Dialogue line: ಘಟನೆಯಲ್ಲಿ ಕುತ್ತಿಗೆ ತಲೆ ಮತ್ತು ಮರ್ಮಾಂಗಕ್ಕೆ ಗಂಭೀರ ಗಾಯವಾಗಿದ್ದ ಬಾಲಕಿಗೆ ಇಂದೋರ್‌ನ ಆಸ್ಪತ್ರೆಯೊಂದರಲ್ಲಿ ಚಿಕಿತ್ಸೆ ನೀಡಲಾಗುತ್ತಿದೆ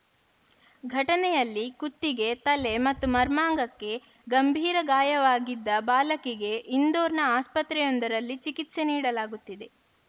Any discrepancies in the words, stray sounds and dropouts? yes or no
no